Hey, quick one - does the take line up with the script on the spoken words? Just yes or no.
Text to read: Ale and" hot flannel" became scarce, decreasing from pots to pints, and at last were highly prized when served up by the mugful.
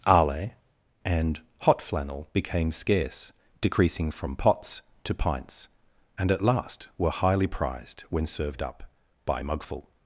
no